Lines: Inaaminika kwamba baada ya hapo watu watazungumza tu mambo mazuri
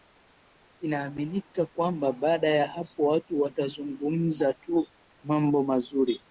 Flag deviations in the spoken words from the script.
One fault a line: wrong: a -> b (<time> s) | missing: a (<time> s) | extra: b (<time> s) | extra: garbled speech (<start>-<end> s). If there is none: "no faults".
no faults